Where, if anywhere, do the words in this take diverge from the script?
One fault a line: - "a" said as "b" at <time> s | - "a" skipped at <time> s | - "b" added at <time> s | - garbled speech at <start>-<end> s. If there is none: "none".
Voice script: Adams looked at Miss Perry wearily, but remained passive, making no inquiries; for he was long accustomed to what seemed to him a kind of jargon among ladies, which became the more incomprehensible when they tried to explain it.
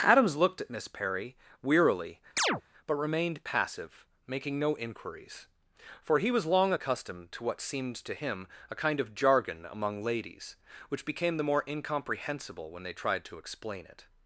none